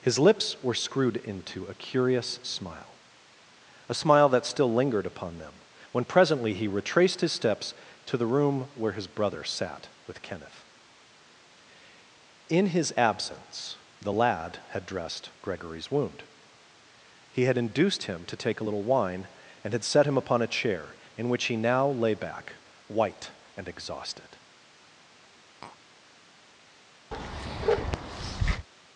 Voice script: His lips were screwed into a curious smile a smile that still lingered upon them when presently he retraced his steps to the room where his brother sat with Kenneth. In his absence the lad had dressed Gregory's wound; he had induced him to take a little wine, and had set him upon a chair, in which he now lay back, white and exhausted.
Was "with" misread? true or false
false